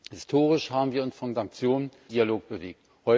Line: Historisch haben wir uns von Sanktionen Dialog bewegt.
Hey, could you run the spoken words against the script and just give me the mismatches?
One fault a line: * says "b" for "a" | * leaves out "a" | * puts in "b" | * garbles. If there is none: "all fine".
all fine